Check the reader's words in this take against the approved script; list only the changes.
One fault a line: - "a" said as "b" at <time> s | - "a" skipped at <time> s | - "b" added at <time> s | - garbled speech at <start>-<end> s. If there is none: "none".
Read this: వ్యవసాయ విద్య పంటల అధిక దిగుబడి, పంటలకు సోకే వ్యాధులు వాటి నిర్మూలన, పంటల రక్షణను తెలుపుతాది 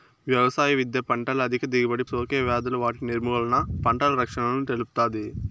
- "పంటలకు" skipped at 2.0 s